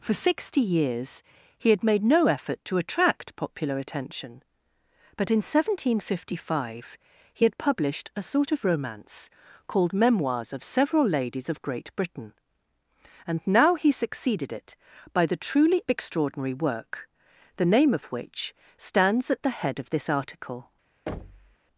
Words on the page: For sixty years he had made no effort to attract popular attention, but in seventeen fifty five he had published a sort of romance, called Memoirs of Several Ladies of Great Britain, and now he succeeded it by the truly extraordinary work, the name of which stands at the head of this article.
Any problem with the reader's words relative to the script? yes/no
no